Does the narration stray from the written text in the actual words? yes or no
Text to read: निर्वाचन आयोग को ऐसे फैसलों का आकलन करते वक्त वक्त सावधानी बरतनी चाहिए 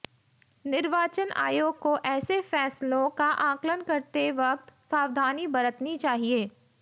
yes